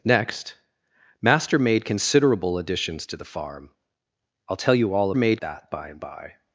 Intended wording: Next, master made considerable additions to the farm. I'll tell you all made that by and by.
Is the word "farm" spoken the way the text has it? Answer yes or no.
yes